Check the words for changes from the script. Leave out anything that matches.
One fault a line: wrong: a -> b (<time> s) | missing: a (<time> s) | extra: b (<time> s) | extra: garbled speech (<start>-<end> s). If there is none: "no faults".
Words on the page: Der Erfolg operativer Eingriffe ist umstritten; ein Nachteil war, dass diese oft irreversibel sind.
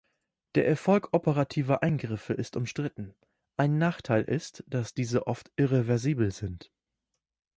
wrong: war -> ist (4.2 s)